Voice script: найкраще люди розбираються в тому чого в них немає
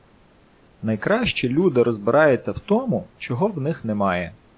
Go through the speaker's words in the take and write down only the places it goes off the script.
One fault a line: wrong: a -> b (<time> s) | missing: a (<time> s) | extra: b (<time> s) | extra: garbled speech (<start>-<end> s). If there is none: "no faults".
no faults